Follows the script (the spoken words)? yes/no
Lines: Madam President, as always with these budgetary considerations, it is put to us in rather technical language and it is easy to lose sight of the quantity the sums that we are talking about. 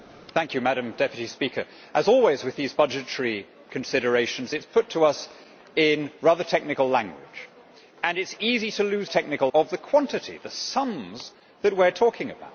no